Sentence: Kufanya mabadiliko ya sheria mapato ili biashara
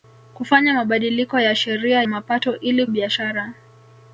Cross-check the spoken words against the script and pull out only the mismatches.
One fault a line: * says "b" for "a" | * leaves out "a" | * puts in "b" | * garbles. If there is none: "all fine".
all fine